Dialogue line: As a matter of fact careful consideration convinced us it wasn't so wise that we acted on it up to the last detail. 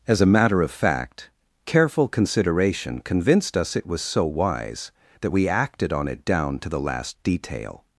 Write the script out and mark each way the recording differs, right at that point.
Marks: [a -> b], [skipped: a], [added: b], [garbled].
As a matter of fact careful consideration convinced us it [wasn't -> was] so wise that we acted on it [up -> down] to the last detail.